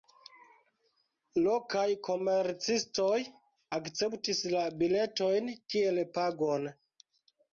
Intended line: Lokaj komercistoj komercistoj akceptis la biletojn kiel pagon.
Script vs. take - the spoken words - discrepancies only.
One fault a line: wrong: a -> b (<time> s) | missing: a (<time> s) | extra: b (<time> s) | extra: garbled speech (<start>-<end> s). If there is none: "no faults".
missing: komercistoj (3.2 s)